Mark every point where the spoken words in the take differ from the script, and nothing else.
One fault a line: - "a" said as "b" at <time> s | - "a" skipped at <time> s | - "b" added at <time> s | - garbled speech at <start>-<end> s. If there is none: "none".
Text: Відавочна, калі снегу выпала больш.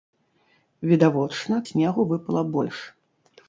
- "калі" skipped at 1.6 s